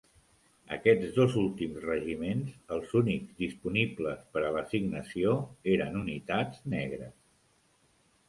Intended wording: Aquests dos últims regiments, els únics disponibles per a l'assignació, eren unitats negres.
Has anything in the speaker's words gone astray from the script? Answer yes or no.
no